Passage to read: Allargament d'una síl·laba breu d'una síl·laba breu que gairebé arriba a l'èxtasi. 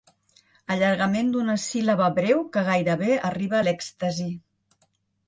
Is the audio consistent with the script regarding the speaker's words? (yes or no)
no